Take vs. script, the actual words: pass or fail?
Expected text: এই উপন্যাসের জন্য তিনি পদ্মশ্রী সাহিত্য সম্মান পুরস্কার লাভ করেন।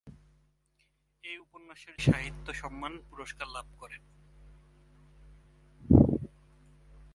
fail